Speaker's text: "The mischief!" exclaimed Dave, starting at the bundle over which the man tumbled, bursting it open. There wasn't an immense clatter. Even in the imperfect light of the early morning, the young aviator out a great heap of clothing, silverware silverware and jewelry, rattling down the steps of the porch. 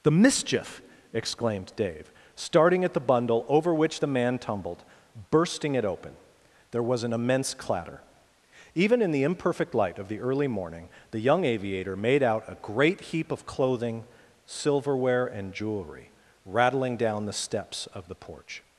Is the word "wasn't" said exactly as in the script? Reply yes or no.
no